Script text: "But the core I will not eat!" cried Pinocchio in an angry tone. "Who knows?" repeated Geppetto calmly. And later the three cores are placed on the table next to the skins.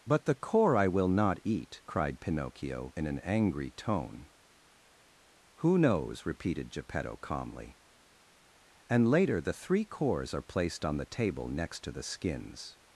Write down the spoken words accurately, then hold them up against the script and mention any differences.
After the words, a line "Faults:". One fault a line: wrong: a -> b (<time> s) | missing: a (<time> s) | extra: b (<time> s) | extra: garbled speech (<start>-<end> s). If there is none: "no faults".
"But the core I will not eat!" cried Pinocchio in an angry tone. "Who knows?" repeated Geppetto calmly. And later the three cores are placed on the table next to the skins.
Faults:
no faults